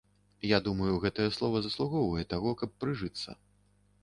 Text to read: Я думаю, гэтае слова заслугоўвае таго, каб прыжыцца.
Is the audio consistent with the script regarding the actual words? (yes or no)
yes